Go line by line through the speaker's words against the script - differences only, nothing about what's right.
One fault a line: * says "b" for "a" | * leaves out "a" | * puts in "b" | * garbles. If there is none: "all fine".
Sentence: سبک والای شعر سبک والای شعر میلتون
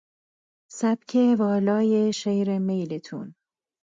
* leaves out "سبک والای شعر"